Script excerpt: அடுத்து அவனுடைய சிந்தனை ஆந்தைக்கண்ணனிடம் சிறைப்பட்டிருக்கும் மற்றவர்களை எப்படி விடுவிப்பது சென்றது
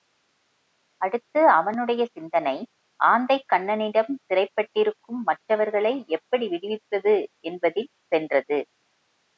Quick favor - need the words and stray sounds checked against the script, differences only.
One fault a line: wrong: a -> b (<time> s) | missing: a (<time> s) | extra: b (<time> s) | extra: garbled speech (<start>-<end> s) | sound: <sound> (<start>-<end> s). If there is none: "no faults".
extra: என்பதில் (7.4 s)